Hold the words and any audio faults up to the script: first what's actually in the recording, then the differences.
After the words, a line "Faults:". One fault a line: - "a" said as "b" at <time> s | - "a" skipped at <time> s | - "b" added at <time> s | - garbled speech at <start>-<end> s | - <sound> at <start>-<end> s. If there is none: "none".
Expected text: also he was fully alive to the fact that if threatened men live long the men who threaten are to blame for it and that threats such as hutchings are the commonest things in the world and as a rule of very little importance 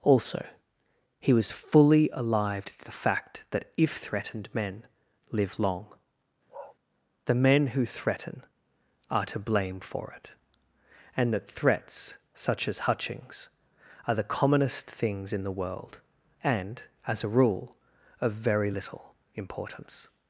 also he was fully alive to the fact that if threatened men live long the men who threaten are to blame for it and that threats such as hutchings are the commonest things in the world and as a rule of very little importance
Faults:
- bark at 6.5-6.8 s